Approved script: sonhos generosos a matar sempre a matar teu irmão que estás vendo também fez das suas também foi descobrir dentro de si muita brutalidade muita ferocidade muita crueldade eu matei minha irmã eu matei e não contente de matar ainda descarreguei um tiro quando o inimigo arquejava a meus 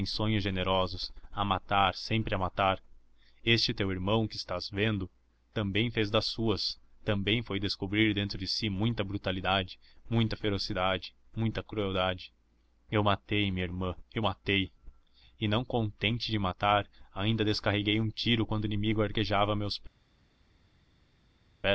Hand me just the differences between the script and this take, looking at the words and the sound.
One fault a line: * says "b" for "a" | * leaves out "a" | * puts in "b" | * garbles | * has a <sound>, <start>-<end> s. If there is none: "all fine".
* puts in "este"